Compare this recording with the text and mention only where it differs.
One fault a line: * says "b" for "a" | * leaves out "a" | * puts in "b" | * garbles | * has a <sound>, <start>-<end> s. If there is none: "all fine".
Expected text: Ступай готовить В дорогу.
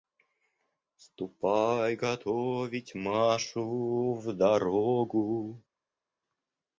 * puts in "Машу"